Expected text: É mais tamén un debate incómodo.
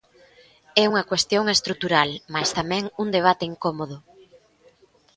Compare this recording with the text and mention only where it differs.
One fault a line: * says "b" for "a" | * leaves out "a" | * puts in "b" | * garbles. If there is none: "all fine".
* puts in "unha cuestión estrutural"